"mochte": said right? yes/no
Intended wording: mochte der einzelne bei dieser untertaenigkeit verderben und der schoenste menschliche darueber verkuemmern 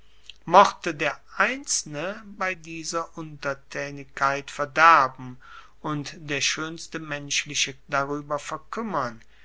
yes